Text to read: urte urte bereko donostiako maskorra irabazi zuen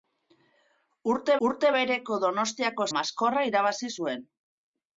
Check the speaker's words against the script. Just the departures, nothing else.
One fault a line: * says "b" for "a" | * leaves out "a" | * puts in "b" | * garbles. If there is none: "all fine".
all fine